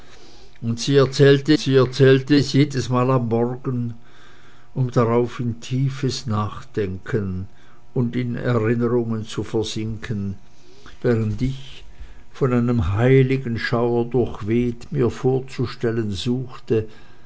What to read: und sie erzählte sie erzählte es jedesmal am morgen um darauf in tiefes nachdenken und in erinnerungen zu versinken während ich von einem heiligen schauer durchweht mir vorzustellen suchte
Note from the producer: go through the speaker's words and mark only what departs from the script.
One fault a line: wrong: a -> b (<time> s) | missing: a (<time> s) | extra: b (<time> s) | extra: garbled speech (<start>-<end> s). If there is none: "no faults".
no faults